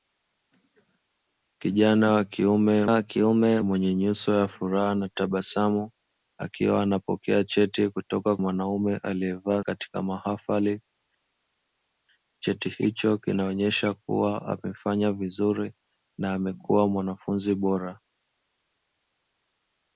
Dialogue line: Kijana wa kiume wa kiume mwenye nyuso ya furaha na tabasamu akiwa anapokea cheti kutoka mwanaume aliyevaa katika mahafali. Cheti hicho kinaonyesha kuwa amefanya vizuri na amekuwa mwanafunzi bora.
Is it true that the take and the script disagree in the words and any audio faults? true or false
false